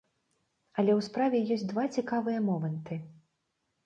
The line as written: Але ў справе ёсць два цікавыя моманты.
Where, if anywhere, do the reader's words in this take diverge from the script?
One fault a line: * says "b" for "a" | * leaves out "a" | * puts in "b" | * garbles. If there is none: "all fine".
all fine